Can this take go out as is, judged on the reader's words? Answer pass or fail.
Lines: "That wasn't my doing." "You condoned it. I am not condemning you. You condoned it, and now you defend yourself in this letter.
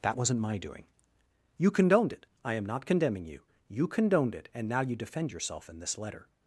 pass